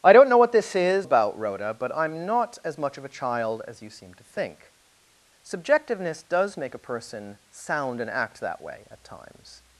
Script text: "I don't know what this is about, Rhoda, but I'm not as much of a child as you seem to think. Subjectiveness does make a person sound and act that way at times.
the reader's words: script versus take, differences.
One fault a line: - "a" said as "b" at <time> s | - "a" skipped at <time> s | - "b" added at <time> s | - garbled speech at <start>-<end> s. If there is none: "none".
none